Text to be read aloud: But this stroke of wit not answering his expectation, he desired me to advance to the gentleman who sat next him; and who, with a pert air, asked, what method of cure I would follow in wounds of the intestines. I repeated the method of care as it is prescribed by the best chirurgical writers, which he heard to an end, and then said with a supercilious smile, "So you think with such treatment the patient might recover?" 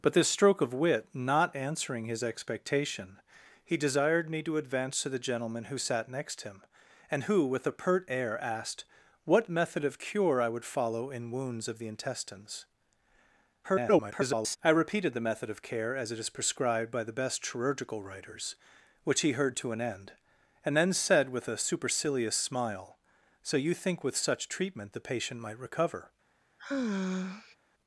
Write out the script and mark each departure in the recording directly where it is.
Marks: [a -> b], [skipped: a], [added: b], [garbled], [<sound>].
But this stroke of wit not answering his expectation, he desired me to advance to the gentleman who sat next him; and who, with a pert air, asked, what method of cure I would follow in wounds of the intestines. [garbled] I repeated the method of care as it is prescribed by the best chirurgical writers, which he heard to an end, and then said with a supercilious smile, "So you think with such treatment the patient might recover?" [sigh]